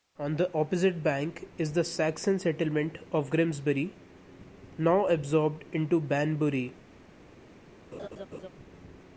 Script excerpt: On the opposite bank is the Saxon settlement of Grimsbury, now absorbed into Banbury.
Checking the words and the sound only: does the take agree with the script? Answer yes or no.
no